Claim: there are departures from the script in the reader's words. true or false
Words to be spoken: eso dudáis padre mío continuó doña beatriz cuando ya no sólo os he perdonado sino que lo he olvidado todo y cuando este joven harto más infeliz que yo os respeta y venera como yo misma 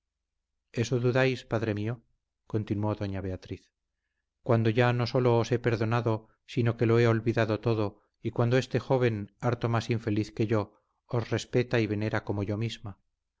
false